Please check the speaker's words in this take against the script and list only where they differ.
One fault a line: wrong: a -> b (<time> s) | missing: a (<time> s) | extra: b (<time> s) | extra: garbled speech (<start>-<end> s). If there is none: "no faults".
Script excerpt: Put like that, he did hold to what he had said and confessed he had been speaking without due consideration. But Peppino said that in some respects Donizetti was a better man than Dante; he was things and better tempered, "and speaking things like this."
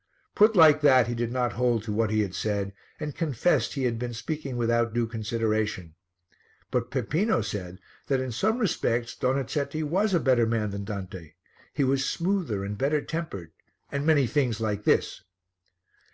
extra: not (1.3 s)
wrong: things -> smoother (12.1 s)
wrong: speaking -> many (14.1 s)